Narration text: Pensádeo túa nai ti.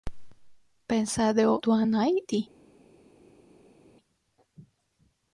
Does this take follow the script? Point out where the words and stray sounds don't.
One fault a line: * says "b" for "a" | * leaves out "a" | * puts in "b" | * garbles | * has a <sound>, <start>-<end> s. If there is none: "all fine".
all fine